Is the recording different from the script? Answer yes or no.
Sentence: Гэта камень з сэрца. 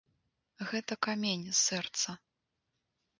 no